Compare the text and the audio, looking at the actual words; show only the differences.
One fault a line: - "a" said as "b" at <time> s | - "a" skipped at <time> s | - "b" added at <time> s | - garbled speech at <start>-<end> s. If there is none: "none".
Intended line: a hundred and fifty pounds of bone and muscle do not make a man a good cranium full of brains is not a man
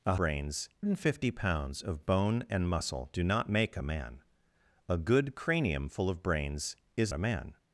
- "hundred" said as "brains" at 0.1 s
- "not" skipped at 7.1 s